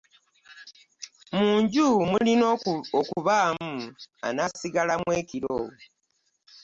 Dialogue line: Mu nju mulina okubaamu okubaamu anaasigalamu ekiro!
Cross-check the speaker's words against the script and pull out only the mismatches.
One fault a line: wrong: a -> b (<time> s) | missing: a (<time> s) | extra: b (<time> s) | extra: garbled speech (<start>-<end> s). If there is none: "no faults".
missing: okubaamu (3.7 s)